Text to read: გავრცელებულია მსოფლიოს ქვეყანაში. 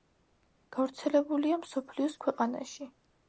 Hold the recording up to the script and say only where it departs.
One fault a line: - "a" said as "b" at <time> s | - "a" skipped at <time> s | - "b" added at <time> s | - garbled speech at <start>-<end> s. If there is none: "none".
none